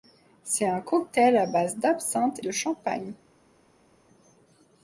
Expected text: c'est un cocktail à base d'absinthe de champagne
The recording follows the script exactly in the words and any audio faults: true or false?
true